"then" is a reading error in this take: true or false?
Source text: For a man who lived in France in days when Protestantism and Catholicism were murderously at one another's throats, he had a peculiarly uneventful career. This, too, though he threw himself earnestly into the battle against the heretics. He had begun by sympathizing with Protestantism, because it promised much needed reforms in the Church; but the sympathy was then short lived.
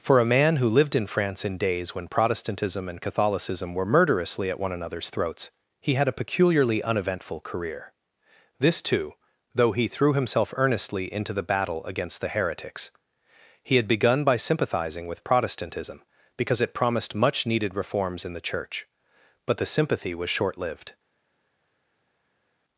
true